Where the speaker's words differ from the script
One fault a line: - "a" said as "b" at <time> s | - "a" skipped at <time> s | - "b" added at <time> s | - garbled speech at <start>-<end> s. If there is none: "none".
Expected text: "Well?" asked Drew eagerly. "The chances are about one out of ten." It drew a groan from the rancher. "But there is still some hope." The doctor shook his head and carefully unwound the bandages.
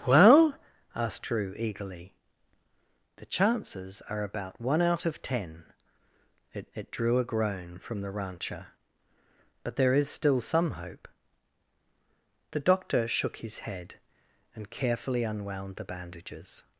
- "it" added at 6.7 s